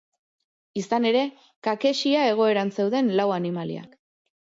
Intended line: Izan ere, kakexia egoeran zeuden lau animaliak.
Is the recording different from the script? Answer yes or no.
no